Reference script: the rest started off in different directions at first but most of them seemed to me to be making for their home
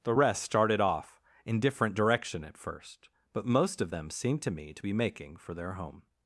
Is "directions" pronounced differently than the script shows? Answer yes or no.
yes